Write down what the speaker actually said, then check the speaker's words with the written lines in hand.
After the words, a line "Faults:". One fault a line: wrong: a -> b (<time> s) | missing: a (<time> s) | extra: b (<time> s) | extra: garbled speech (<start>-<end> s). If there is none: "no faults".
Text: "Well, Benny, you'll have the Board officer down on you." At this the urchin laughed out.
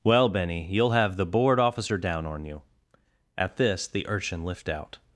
"Well, Benny, you'll have the Board officer down on you." At this the urchin lift out.
Faults:
wrong: laughed -> lift (4.4 s)